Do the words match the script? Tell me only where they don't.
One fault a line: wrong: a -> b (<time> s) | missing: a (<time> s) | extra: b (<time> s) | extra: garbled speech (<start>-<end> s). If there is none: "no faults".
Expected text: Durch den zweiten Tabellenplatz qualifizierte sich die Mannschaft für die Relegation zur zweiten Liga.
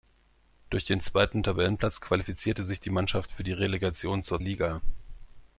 missing: zweiten (4.4 s)